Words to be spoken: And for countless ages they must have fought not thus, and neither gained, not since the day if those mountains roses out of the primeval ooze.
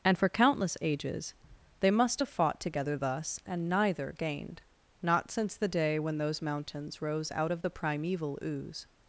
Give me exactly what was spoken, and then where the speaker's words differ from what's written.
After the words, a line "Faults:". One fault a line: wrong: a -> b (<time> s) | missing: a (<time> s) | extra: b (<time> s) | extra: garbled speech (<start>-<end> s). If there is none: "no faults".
And for countless ages they must have fought together thus, and neither gained, not since the day when those mountains rose out of the primeval ooze.
Faults:
wrong: not -> together (2.6 s)
wrong: if -> when (6.0 s)
wrong: roses -> rose (7.0 s)